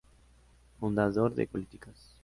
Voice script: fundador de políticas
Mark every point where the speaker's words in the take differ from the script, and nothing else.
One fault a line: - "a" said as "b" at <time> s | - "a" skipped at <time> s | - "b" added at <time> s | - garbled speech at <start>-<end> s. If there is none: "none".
none